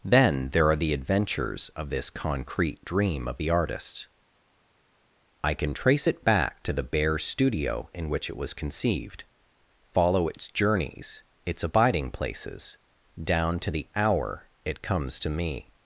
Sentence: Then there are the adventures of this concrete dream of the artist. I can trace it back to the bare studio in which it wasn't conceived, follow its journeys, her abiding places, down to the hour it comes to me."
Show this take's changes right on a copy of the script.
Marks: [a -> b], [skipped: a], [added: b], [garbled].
Then there are the adventures of this concrete dream of the artist. I can trace it back to the bare studio in which it [wasn't -> was] conceived, follow its journeys, [her -> its] abiding places, down to the hour it comes to me."